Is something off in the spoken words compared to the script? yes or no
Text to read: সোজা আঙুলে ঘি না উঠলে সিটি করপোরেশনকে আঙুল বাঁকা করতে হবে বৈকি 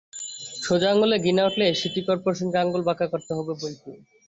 no